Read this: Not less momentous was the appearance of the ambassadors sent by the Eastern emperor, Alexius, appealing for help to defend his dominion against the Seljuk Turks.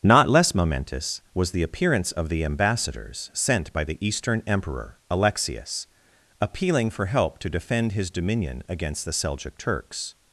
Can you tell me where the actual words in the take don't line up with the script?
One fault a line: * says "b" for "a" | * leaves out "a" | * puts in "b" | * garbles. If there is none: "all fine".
all fine